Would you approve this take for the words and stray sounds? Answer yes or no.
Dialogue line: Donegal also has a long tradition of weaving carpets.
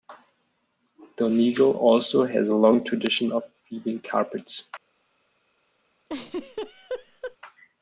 no